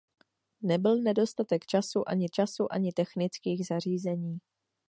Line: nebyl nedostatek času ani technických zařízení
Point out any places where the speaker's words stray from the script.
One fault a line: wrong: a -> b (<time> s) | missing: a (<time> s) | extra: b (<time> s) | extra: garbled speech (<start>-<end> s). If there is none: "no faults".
extra: času ani (2.3 s)